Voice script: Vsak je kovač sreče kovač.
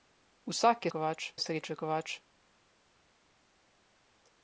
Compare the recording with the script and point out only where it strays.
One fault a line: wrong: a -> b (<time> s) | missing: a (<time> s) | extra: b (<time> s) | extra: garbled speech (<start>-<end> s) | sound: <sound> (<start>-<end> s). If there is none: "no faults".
no faults